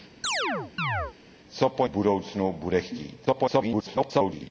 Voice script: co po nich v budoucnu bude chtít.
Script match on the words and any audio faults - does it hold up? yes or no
no